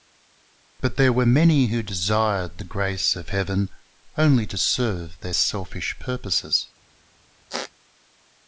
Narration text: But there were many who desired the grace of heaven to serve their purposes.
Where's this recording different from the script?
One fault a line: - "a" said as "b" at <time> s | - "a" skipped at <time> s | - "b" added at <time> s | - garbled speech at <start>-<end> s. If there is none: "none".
- "only" added at 4.2 s
- "selfish" added at 5.3 s